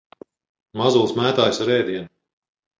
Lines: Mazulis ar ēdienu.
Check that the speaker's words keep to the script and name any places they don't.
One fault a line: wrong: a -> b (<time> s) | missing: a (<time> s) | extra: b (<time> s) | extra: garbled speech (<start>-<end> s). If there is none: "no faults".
extra: mētājas (1.2 s)